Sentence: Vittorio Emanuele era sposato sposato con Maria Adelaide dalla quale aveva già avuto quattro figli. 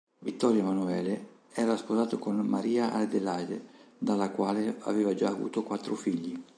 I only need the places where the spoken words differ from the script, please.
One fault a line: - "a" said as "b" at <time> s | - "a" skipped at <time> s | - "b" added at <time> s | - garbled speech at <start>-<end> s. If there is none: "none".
- "sposato" skipped at 2.2 s